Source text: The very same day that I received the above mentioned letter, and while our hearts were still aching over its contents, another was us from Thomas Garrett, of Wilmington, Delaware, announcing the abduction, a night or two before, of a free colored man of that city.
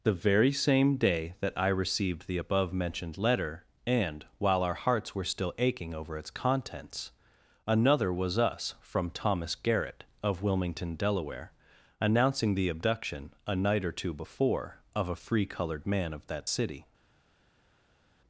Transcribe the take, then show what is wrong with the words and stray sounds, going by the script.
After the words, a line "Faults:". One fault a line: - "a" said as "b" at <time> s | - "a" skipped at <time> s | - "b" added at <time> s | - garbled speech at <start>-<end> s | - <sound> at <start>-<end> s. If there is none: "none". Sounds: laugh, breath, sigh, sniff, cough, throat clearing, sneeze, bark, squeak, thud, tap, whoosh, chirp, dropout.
The very same day that I received the above mentioned letter, and while our hearts were still aching over its contents, another was us from Thomas Garrett, of Wilmington, Delaware, announcing the abduction, a night or two before, of a free colored man of that city.
Faults:
none